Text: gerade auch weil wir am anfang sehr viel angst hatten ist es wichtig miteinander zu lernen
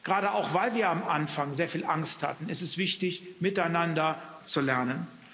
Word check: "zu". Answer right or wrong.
right